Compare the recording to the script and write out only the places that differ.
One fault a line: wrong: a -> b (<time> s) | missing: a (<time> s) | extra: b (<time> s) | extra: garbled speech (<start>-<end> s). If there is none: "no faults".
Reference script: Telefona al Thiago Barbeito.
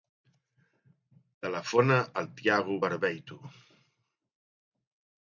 no faults